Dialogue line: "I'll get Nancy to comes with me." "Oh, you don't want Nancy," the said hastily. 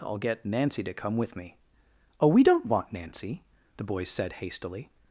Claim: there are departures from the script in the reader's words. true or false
true